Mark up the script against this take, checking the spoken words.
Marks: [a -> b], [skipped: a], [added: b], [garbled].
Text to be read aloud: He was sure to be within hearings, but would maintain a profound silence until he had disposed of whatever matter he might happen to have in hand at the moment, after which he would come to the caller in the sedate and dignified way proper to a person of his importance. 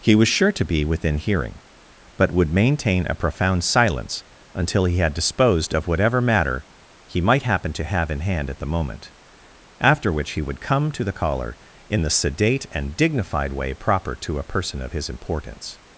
He was sure to be within [hearings, -> hearing] but would maintain a profound silence until he had disposed of whatever matter he might happen to have in hand at the moment, after which he would come to the caller in the sedate and dignified way proper to a person of his importance.